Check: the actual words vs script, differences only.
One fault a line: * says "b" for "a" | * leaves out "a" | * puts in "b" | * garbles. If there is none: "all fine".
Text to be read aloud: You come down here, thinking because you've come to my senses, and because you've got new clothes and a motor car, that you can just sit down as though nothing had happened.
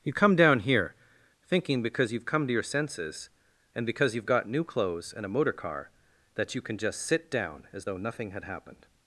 * says "your" for "my"